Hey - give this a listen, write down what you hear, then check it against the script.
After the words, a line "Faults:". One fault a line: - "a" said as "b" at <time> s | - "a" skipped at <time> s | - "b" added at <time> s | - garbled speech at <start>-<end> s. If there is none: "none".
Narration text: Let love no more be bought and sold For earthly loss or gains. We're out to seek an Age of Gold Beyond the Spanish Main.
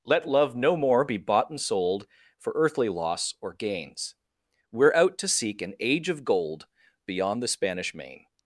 Let love no more be bought and sold For earthly loss or gains. We're out to seek an Age of Gold Beyond the Spanish Main.
Faults:
none